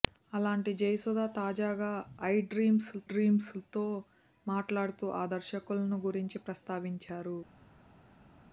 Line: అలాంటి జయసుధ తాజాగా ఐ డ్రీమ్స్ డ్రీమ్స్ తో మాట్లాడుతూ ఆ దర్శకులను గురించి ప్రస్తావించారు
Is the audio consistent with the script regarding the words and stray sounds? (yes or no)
yes